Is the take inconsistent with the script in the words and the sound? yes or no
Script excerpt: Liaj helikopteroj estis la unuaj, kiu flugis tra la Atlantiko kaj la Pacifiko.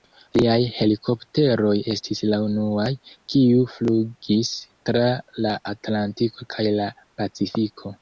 no